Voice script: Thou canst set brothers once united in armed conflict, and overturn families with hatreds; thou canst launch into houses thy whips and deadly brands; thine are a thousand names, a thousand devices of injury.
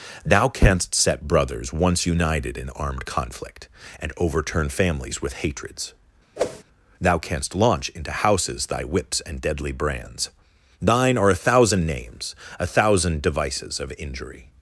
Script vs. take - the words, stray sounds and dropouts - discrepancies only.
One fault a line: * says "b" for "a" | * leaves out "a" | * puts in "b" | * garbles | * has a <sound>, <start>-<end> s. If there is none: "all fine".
* has a whoosh, 6.4-6.6 s